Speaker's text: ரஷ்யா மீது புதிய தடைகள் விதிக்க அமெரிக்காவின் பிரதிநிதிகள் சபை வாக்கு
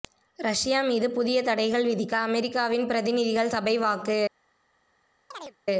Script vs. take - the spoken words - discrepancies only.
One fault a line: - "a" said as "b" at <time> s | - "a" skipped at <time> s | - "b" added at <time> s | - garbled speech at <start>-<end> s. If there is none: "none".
none